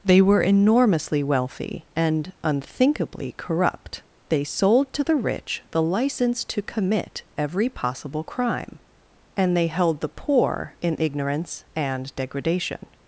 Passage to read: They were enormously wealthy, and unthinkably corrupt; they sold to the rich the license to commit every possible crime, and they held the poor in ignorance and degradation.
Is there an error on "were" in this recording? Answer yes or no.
no